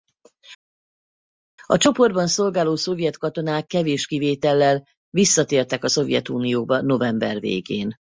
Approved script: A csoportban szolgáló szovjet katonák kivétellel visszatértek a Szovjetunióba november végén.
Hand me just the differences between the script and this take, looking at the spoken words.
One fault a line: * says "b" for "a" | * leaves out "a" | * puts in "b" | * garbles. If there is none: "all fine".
* puts in "kevés"